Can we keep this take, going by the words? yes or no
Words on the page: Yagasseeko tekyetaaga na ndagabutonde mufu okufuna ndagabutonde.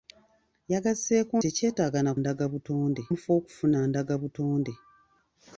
yes